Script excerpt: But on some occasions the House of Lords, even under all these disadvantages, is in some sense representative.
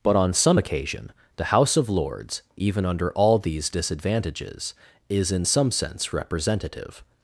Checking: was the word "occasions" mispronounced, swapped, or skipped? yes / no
yes